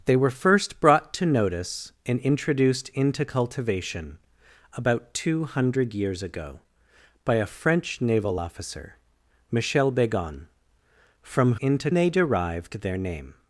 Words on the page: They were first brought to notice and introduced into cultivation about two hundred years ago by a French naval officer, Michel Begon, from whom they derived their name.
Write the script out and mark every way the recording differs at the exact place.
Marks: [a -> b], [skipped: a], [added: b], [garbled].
They were first brought to notice and introduced into cultivation about two hundred years ago by a French naval officer, Michel Begon, from [whom -> into] they derived their name.